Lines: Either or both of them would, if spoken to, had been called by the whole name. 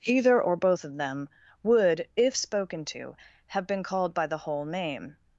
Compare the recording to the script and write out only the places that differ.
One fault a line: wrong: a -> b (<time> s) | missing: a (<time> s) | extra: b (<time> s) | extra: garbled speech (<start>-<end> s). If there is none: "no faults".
wrong: had -> have (3.5 s)